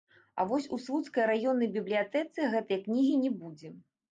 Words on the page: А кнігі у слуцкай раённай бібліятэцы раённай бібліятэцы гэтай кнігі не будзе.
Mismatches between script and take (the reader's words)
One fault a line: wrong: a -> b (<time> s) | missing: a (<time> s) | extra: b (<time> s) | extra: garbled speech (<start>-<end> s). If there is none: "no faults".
wrong: кнігі -> вось (0.5 s)
missing: раённай бібліятэцы (2.5 s)